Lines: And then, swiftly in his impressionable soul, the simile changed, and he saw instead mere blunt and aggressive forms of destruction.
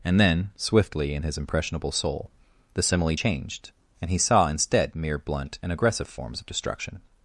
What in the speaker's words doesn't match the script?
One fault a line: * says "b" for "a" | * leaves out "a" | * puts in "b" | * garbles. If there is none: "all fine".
all fine